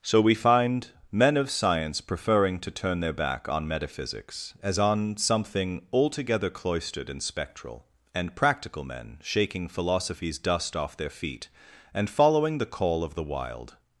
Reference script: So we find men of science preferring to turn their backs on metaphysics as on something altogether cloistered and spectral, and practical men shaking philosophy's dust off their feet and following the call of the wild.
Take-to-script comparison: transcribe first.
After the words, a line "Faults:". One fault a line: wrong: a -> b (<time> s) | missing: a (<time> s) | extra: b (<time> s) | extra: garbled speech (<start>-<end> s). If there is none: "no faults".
So we find men of science preferring to turn their back on metaphysics as on something altogether cloistered and spectral, and practical men shaking philosophy's dust off their feet and following the call of the wild.
Faults:
wrong: backs -> back (3.1 s)